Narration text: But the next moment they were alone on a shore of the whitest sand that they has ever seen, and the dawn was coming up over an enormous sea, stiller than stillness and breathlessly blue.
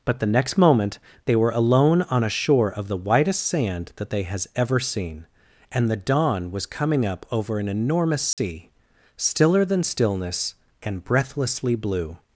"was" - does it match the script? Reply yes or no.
yes